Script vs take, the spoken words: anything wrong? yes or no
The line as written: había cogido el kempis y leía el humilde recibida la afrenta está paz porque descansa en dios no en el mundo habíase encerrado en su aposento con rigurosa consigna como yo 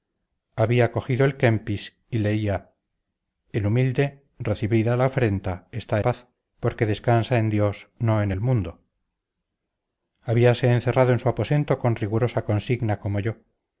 no